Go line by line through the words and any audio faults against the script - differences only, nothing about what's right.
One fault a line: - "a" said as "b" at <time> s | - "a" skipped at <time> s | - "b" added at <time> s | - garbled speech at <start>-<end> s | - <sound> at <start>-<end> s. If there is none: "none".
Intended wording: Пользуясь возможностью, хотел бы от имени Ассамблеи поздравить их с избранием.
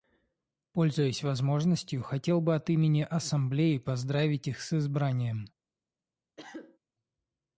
- cough at 6.4-6.8 s